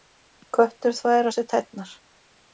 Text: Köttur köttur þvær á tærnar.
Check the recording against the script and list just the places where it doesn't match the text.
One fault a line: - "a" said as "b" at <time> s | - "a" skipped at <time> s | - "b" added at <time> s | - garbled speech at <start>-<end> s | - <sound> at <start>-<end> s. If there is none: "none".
- "köttur" skipped at 1.0 s
- "sér" added at 1.4 s